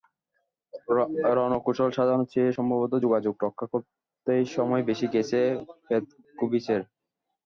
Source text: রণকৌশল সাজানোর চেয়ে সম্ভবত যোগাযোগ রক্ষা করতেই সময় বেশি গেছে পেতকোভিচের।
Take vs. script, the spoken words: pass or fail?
pass